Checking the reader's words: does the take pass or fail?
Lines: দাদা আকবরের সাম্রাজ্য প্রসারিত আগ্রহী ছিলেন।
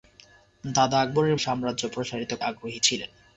pass